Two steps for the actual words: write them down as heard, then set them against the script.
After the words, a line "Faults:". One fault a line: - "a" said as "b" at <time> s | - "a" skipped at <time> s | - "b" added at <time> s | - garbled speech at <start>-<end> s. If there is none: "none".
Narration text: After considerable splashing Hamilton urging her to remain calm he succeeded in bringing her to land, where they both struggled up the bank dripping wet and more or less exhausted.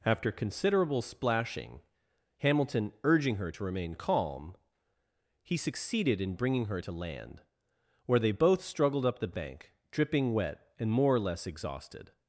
After considerable splashing Hamilton urging her to remain calm he succeeded in bringing her to land, where they both struggled up the bank dripping wet and more or less exhausted.
Faults:
none